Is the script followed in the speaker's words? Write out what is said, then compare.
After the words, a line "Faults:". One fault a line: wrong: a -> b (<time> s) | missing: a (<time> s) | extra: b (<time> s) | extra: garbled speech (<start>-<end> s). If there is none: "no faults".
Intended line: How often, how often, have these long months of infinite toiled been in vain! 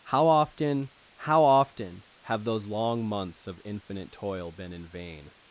How often, how often, have those long months of infinite toil been in vain!
Faults:
wrong: these -> those (2.4 s)
wrong: toiled -> toil (4.1 s)